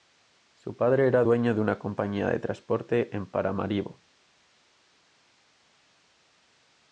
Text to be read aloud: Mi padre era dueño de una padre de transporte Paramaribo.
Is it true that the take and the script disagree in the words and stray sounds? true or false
true